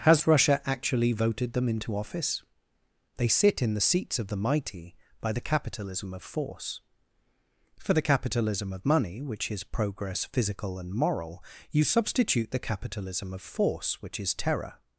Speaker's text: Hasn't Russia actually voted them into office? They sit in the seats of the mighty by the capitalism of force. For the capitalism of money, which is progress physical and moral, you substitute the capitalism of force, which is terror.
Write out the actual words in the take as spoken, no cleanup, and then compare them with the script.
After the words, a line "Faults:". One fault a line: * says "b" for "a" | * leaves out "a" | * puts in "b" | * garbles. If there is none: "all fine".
Has Russia actually voted them into office? They sit in the seats of the mighty by the capitalism of force. For the capitalism of money, which is progress physical and moral, you substitute the capitalism of force, which is terror.
Faults:
* says "Has" for "Hasn't"